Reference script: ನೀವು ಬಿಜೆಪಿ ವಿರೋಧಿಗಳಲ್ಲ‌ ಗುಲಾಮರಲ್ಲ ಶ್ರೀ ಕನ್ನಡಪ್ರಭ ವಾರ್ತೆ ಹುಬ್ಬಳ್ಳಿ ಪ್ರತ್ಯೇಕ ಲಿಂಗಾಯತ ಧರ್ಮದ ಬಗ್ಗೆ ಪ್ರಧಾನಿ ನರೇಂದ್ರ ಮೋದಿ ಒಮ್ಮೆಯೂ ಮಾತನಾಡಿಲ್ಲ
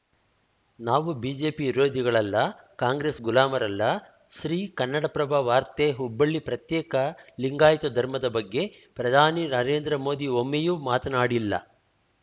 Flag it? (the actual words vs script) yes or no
yes